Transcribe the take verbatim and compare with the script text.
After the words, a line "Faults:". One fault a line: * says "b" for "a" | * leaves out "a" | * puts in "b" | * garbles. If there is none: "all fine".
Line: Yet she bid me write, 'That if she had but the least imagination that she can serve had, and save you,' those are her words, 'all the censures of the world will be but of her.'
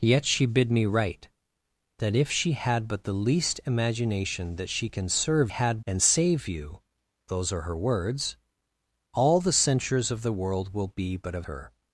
Yet she bid me write, 'That if she had but the least imagination that she can serve had, and save you,' those are her words, 'all the censures of the world will be but of her.'
Faults:
all fine